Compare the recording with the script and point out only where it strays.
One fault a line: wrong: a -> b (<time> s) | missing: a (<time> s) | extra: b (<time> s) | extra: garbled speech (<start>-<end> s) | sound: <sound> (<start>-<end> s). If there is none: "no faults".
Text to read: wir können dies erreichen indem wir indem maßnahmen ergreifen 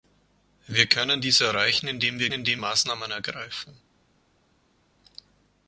no faults